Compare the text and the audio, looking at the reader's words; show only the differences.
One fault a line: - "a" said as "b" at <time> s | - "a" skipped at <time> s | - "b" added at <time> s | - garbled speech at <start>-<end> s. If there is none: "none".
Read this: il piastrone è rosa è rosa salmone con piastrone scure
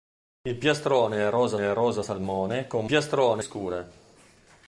none